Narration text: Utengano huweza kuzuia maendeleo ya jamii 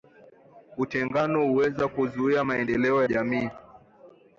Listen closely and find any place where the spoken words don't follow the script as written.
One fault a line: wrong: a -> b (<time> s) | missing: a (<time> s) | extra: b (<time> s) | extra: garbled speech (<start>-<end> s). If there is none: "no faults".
missing: ya (3.0 s)